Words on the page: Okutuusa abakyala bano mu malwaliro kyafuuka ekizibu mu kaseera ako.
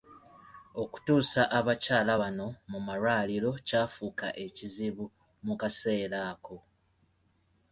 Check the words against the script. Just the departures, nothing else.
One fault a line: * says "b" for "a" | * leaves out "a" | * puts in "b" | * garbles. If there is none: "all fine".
all fine